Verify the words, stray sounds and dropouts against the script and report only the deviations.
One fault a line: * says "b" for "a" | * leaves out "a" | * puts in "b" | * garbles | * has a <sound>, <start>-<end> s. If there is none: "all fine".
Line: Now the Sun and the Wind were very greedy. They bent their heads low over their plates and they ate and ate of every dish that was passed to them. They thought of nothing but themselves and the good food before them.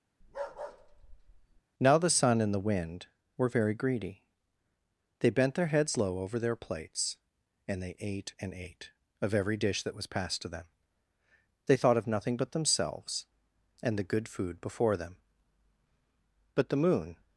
* has a bark, 0.2-1.6 s
* puts in "But the Moon"